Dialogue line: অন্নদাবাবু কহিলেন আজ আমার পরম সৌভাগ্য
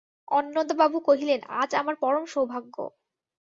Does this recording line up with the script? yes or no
yes